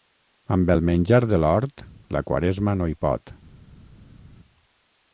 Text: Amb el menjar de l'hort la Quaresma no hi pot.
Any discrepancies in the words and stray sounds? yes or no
no